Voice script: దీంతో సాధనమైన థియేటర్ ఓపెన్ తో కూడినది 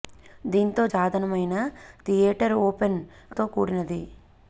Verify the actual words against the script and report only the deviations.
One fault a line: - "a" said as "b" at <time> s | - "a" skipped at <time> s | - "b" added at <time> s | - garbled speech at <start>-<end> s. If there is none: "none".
none